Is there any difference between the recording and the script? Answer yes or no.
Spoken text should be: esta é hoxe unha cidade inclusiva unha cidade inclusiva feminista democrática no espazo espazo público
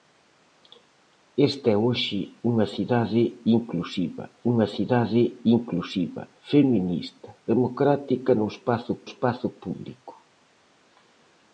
no